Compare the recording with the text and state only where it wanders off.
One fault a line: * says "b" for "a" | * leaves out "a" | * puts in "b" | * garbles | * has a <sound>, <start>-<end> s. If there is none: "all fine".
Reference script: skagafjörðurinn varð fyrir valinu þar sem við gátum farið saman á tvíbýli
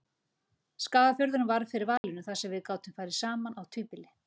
* has a dropout, 2.0-2.0 s